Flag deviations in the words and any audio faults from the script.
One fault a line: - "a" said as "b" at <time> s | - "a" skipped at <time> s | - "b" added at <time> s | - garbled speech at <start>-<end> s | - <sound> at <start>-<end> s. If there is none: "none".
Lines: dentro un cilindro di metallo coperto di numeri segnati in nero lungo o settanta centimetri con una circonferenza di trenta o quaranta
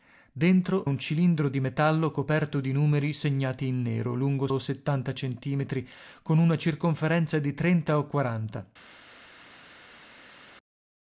none